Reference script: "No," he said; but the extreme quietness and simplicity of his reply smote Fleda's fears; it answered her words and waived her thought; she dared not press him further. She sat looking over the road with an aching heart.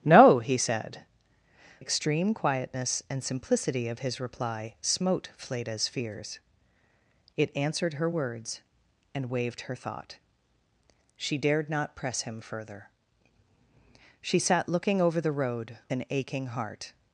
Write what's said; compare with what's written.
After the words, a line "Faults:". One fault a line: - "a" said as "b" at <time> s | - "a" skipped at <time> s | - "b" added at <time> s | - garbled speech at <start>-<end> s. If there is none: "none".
"No," he said; extreme quietness and simplicity of his reply smote Fleda's fears; it answered her words and waived her thought; she dared not press him further. She sat looking over the road an aching heart.
Faults:
- "but the" skipped at 1.0 s
- "with" skipped at 15.8 s